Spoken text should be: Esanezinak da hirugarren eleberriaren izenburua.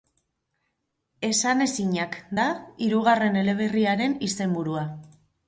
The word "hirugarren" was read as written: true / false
true